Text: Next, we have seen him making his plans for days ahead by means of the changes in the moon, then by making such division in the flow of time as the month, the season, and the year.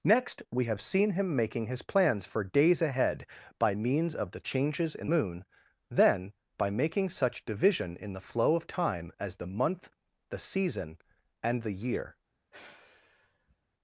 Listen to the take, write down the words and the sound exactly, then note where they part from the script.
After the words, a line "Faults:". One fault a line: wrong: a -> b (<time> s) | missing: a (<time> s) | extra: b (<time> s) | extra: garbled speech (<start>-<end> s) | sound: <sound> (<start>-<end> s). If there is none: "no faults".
Next, we have seen him making his plans for days ahead by means of the changes in moon, then by making such division in the flow of time as the month, the season, and the year.
Faults:
missing: the (5.1 s)
sound: sigh (12.5-13.6 s)